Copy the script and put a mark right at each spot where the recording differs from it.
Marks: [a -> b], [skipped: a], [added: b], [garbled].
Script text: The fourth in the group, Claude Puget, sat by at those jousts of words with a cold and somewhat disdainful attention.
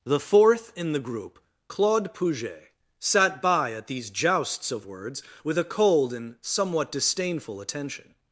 The fourth in the group, Claude Puget, sat by at [those -> these] jousts of words with a cold and somewhat disdainful attention.